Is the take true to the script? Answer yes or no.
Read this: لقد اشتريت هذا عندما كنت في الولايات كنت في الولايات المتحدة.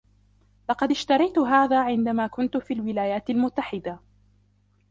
no